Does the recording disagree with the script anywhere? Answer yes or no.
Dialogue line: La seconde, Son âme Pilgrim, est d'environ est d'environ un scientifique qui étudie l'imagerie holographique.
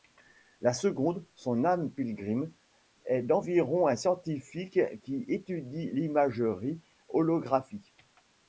yes